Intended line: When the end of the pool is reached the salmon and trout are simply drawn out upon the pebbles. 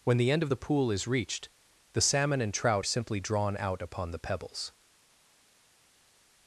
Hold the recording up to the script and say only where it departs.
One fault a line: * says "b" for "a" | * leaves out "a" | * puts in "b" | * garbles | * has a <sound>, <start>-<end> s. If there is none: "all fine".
* leaves out "are"